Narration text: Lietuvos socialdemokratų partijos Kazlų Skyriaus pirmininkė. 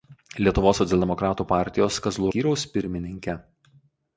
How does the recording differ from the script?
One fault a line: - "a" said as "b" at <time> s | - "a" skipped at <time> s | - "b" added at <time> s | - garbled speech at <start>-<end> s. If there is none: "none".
none